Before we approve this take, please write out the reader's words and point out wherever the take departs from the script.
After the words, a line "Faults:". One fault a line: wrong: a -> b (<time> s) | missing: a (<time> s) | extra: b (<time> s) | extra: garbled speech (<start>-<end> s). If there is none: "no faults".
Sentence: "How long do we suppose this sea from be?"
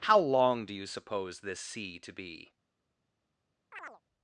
"How long do you suppose this sea to be?"
Faults:
wrong: we -> you (0.7 s)
wrong: from -> to (2.0 s)